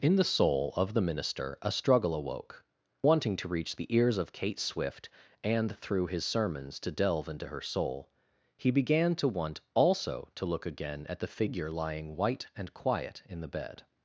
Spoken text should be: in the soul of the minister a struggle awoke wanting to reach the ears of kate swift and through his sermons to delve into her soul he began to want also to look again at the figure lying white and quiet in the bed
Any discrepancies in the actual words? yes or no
no